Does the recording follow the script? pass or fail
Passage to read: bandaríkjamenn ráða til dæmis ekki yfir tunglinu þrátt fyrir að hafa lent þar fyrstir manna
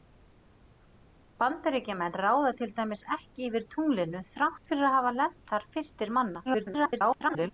fail